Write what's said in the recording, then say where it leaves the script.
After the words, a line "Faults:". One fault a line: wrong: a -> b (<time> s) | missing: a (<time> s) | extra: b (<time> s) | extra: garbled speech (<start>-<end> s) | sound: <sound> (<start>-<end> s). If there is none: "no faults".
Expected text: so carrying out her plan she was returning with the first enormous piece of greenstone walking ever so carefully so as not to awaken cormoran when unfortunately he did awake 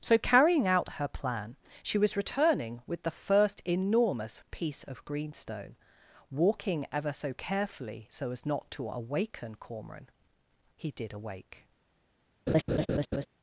so carrying out her plan she was returning with the first enormous piece of greenstone walking ever so carefully so as not to awaken cormoran he did awake
Faults:
missing: when unfortunately (10.1 s)
sound: laugh (12.5-13.3 s)